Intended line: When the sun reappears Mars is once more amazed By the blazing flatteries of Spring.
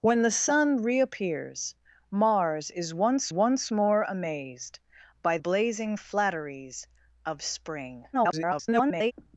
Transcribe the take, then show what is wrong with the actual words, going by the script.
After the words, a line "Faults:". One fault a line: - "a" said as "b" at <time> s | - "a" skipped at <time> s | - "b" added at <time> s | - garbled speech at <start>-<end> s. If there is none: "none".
When the sun reappears Mars is once once more amazed By blazing flatteries of Spring. [garbled]
Faults:
- "once" added at 3.3 s
- "the" skipped at 5.4 s
- garbled speech at 8.1-9.1 s